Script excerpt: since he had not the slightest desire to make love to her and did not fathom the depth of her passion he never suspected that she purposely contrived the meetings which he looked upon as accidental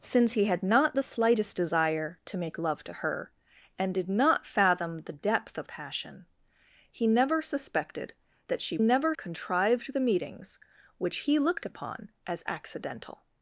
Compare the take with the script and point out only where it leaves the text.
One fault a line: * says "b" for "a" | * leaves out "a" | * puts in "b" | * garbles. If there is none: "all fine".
* leaves out "her"
* says "never" for "purposely"